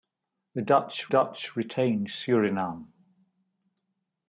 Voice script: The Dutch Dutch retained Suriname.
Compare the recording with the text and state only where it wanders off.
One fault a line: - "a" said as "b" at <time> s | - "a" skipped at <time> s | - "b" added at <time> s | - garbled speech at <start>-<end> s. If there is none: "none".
none